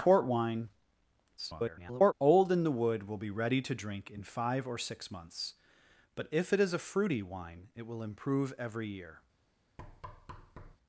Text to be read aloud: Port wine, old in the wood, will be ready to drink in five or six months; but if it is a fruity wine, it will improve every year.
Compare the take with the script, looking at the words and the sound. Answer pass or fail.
fail